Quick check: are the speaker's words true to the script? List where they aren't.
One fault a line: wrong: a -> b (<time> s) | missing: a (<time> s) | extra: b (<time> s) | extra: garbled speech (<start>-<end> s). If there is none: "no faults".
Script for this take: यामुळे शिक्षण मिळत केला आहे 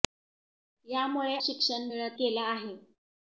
no faults